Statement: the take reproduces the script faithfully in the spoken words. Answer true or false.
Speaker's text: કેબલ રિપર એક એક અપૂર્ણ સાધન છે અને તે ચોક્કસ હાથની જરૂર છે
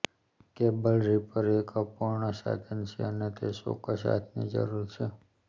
false